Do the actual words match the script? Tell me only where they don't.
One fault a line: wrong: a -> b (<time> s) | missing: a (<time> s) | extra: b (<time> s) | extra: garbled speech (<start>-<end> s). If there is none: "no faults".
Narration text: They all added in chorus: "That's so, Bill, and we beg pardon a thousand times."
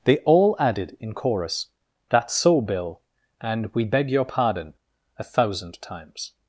extra: your (4.1 s)